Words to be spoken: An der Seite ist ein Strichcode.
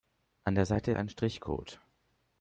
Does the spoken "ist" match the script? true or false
false